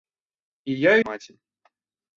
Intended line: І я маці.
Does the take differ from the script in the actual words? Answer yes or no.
no